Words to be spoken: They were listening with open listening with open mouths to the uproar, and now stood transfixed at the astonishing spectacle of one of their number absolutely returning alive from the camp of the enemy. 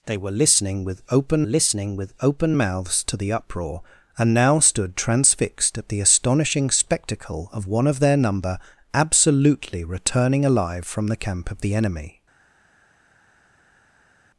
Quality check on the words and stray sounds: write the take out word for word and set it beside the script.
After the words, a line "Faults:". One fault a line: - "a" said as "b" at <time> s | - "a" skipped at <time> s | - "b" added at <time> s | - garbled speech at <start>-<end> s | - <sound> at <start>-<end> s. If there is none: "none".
They were listening with open listening with open mouths to the uproar, and now stood transfixed at the astonishing spectacle of one of their number absolutely returning alive from the camp of the enemy.
Faults:
none